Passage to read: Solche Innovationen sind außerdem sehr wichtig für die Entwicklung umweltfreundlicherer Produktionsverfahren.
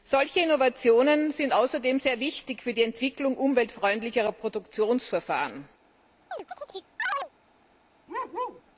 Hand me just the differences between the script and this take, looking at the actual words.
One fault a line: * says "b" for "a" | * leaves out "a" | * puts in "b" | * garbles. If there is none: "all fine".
all fine